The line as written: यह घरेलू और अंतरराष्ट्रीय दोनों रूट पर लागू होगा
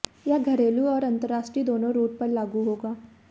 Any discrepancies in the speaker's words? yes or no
no